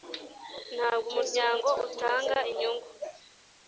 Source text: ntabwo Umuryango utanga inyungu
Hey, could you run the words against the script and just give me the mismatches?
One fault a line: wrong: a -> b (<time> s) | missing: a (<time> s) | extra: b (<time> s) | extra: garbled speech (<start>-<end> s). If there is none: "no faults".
no faults